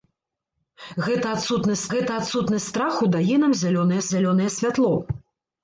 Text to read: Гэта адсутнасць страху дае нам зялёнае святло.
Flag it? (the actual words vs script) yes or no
yes